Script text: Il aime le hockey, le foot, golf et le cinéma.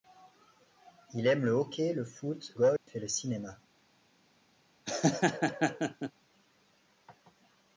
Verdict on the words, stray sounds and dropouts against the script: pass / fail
fail